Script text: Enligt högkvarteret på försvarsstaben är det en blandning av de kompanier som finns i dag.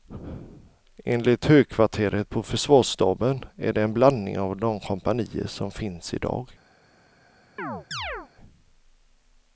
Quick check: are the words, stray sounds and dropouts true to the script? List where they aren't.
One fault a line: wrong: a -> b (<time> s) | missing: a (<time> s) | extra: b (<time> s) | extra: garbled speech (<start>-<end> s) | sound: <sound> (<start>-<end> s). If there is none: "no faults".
sound: chirp (7.6-8.3 s)